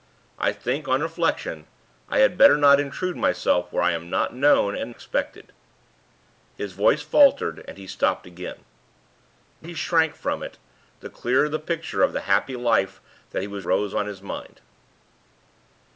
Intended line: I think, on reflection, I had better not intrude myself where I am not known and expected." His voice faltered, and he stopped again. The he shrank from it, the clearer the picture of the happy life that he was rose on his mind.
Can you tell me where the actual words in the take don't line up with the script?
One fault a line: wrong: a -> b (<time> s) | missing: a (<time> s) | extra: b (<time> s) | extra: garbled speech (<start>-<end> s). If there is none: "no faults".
no faults